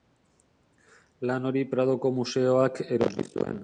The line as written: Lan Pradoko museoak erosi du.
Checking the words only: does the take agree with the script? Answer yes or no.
no